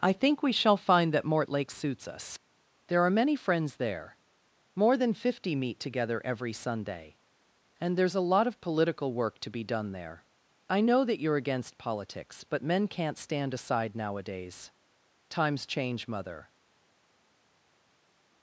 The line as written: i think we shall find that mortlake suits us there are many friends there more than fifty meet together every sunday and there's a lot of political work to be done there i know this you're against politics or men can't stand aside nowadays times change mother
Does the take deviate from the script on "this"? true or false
true